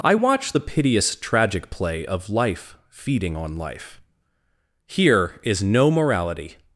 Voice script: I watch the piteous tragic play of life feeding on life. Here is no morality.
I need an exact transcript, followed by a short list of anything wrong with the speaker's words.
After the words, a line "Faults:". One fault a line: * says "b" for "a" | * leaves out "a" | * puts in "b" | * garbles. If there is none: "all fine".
I watch the piteous tragic play of life feeding on life. Here is no morality.
Faults:
all fine